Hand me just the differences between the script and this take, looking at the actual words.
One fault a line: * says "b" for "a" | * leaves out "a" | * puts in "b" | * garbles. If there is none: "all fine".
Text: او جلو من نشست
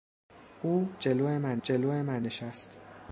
* puts in "جلو من"